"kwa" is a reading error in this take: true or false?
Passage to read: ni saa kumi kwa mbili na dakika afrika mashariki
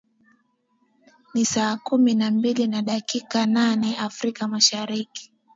true